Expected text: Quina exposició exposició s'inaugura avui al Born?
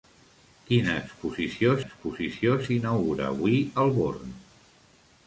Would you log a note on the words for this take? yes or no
no